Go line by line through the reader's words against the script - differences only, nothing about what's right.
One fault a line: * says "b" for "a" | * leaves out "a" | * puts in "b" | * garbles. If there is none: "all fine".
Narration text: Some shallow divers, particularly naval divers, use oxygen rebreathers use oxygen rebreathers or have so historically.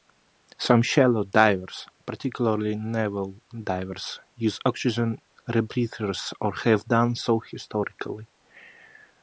* leaves out "use oxygen rebreathers"
* puts in "done"